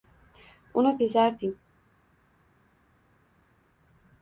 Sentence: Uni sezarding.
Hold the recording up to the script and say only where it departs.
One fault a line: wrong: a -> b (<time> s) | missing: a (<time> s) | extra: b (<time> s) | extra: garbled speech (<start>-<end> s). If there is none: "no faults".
no faults